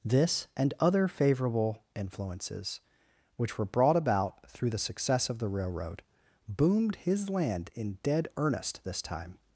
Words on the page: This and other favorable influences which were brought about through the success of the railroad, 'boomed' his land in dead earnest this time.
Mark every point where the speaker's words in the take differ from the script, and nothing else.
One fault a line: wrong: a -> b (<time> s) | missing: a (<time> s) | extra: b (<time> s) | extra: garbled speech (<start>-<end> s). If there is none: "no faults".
no faults